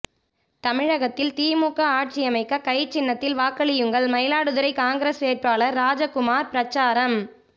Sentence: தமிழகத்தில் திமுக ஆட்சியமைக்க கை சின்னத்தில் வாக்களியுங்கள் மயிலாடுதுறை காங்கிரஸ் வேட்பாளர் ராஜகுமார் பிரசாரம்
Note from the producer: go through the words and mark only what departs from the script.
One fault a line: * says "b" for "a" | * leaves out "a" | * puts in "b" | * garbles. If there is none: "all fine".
all fine